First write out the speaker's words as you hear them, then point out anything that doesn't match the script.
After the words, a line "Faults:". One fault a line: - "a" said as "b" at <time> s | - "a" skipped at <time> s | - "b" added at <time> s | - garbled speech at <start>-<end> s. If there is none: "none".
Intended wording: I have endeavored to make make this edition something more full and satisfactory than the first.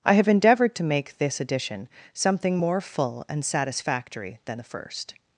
I have endeavored to make this edition something more full and satisfactory than the first.
Faults:
- "make" skipped at 1.2 s